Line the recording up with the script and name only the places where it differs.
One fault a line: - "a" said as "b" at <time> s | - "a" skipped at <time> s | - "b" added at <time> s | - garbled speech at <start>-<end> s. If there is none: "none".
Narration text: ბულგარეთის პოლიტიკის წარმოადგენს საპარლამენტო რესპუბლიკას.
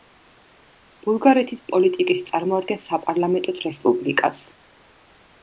none